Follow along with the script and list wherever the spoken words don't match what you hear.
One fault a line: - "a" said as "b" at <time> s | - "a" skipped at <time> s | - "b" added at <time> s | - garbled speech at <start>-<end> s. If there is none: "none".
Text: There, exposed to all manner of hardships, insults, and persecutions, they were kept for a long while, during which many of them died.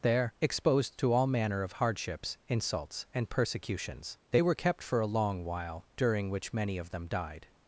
none